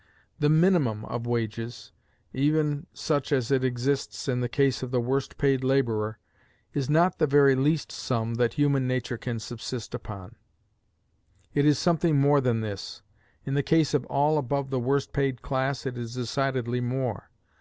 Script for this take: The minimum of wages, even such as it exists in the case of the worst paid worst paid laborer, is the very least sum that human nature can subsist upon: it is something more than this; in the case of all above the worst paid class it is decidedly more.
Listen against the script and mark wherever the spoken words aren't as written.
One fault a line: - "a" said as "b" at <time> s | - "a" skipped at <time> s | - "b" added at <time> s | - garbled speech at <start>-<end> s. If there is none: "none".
- "worst paid" skipped at 5.6 s
- "not" added at 6.9 s